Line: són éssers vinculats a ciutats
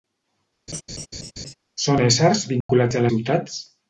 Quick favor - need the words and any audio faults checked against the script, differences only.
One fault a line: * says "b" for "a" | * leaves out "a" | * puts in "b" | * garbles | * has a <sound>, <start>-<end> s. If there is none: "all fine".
* has a laugh, 0.7-1.5 s
* has a dropout, 2.6-2.7 s